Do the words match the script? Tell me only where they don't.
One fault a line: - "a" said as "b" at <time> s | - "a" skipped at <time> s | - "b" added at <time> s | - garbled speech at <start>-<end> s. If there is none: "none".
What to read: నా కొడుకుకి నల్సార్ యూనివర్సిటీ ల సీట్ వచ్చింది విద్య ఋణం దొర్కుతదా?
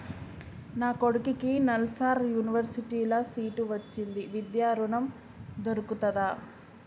none